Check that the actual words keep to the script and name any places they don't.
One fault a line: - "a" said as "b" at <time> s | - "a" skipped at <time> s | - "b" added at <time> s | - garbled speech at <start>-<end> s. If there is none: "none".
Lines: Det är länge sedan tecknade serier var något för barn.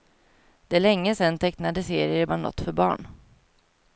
none